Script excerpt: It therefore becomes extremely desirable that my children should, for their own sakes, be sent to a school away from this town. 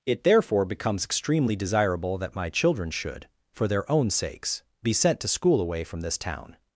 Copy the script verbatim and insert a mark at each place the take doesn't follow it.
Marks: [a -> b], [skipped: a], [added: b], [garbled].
It therefore becomes extremely desirable that my children should, for their own sakes, be sent to [skipped: a] school away from this town.